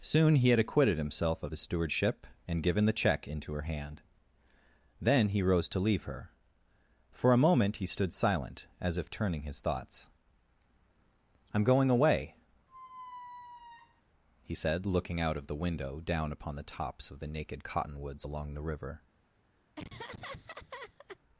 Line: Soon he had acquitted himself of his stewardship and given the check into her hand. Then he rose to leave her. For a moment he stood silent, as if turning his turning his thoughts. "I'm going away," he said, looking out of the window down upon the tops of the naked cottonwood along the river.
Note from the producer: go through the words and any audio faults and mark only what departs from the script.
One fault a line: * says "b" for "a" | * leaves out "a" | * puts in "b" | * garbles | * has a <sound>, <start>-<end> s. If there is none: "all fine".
* leaves out "turning his"
* has a squeak, 12.7-14.0 s
* says "cottonwoods" for "cottonwood"
* has a laugh, 19.8-21.2 s